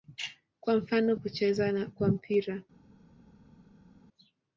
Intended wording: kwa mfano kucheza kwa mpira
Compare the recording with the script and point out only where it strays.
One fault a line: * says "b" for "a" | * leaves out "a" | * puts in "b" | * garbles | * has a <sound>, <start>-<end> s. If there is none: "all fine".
all fine